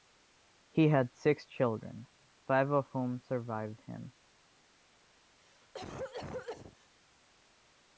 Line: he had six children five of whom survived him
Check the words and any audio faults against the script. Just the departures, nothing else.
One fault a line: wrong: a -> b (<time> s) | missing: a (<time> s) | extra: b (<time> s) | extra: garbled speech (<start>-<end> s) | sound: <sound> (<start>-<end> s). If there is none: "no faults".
sound: cough (5.4-6.9 s)